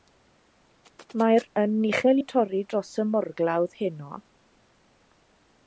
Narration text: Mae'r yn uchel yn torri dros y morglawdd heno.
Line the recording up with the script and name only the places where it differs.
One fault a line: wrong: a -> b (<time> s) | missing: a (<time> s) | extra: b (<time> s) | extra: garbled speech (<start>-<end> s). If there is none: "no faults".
no faults